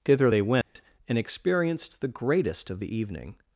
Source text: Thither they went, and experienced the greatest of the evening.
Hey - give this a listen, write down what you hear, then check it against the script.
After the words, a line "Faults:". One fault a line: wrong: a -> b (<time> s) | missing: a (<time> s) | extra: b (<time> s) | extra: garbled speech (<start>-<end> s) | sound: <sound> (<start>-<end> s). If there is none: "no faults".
Thither they went, and experienced the greatest of the evening.
Faults:
sound: dropout (0.6-0.8 s)